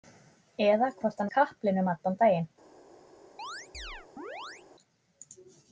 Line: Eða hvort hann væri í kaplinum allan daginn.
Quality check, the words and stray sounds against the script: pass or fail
fail